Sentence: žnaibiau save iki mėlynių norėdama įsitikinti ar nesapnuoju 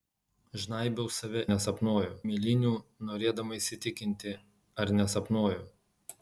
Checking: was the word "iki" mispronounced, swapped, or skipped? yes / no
yes